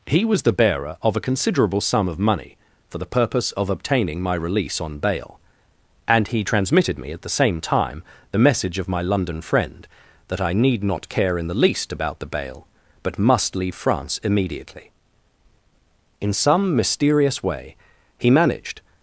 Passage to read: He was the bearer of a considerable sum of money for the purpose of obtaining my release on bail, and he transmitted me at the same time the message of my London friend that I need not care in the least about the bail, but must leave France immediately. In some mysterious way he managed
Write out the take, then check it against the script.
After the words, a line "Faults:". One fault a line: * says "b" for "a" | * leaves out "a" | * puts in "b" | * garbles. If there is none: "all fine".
He was the bearer of a considerable sum of money for the purpose of obtaining my release on bail, and he transmitted me at the same time the message of my London friend that I need not care in the least about the bail, but must leave France immediately. In some mysterious way he managed
Faults:
all fine